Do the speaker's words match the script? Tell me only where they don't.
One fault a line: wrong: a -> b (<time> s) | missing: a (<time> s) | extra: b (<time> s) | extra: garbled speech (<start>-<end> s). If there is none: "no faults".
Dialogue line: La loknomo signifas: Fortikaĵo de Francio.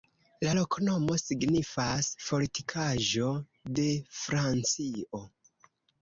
no faults